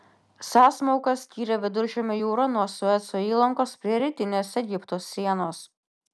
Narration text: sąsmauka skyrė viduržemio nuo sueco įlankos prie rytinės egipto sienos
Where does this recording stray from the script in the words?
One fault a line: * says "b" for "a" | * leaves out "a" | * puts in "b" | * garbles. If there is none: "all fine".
* puts in "jūrą"